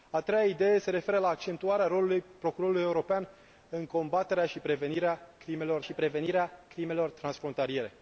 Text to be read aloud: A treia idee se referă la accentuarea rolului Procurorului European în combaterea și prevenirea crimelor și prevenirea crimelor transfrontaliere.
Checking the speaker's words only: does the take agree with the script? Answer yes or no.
yes